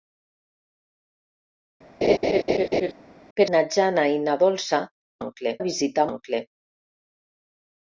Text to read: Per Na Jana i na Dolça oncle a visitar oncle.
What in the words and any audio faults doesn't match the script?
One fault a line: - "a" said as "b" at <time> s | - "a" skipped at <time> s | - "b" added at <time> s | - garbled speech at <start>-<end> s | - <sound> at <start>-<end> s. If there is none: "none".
- laugh at 2.0-2.9 s